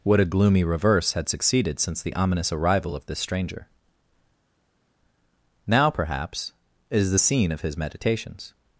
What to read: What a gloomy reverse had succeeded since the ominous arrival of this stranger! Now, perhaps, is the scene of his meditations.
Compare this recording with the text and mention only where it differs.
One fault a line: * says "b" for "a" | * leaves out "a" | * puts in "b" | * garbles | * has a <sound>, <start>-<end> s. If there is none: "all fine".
all fine